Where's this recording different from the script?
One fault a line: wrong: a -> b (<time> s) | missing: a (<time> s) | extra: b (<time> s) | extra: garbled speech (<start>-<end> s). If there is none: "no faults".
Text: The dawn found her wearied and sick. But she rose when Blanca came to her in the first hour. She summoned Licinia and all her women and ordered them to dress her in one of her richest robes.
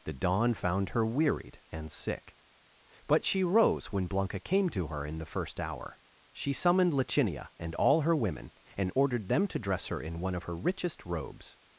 no faults